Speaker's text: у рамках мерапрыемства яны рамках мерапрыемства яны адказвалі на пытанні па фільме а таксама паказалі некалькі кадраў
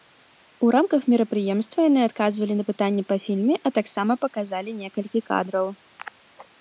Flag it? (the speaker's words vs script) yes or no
yes